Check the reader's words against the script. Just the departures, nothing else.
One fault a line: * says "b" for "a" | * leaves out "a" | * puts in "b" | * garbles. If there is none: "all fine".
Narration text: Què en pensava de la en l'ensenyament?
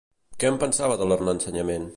all fine